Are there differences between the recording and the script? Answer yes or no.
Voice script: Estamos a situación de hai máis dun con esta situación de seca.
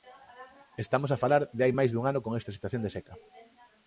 yes